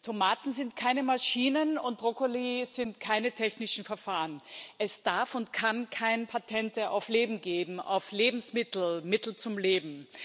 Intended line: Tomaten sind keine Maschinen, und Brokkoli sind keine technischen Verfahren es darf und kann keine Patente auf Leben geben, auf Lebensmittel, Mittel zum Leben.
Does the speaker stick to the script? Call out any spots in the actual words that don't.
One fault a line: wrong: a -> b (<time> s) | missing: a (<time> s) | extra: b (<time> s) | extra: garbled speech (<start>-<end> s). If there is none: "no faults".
no faults